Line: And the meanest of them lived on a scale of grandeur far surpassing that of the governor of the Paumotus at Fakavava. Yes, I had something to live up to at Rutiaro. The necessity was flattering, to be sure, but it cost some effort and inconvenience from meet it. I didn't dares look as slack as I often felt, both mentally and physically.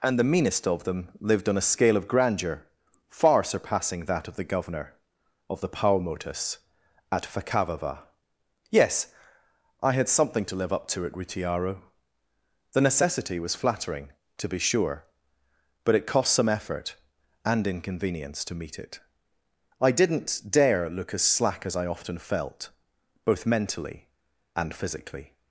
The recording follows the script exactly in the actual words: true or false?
false